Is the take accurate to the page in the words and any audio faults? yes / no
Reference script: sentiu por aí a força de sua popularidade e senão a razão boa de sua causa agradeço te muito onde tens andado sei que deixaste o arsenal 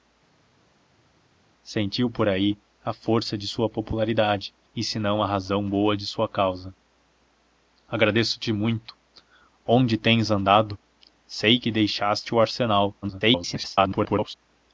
no